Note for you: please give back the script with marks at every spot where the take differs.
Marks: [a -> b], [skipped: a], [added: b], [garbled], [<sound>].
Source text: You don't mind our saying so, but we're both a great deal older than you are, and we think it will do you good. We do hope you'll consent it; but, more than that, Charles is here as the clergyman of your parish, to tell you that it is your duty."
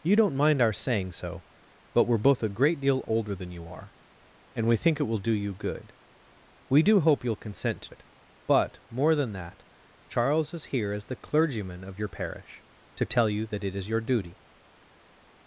You don't mind our saying so, but we're both a great deal older than you are, and we think it will do you good. We do hope you'll consent it; but, more than that, Charles is here as the clergyman of your parish, to tell you that it is your duty."